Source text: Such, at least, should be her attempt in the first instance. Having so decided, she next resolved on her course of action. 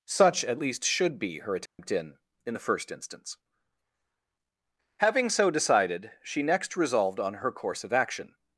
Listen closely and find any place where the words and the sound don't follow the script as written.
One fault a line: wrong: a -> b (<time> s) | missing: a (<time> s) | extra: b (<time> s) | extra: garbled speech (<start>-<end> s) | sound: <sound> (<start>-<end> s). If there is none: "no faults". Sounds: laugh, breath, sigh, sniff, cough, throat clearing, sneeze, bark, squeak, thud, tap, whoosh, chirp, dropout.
sound: dropout (1.7-1.8 s)
extra: in (2.4 s)